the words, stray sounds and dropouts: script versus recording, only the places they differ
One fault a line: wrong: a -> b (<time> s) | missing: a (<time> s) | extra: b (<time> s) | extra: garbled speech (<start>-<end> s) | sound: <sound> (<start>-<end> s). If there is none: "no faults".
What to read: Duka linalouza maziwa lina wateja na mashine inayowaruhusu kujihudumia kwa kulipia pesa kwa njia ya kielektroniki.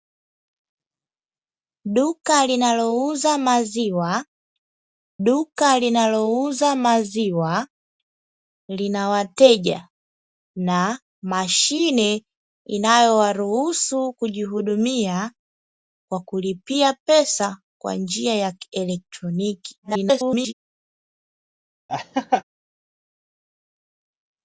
extra: duka linalouza maziwa (5.3 s)
extra: garbled speech (19.8-20.5 s)
sound: laugh (21.9-22.4 s)